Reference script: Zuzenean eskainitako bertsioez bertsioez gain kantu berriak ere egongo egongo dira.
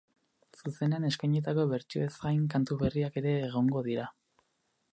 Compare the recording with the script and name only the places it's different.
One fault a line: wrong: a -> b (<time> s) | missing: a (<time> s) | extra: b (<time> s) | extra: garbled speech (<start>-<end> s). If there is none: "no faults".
missing: bertsioez (2.1 s)
missing: egongo (3.9 s)